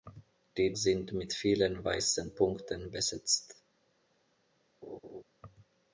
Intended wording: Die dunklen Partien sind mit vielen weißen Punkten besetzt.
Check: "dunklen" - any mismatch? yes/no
yes